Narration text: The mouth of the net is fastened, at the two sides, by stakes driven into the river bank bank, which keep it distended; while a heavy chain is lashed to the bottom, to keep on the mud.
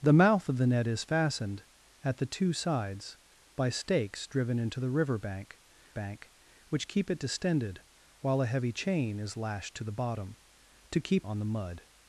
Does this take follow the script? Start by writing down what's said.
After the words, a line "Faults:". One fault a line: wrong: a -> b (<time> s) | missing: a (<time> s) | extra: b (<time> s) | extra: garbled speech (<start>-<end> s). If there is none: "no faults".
The mouth of the net is fastened, at the two sides, by stakes driven into the river bank bank, which keep it distended; while a heavy chain is lashed to the bottom, to keep on the mud.
Faults:
no faults